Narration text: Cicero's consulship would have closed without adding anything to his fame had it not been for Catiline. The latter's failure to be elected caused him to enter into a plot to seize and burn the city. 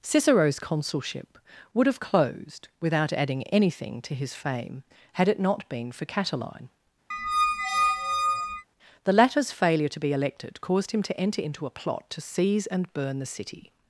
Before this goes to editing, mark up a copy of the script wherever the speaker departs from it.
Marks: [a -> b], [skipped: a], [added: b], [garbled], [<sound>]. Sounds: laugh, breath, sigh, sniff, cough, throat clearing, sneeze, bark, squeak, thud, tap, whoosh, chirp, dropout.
Cicero's consulship would have closed without adding anything to his fame had it not been for Catiline. [squeak] The latter's failure to be elected caused him to enter into a plot to seize and burn the city.